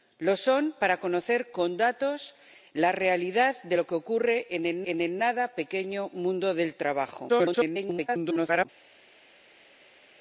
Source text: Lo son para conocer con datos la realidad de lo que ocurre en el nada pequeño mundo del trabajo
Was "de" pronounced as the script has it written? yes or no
yes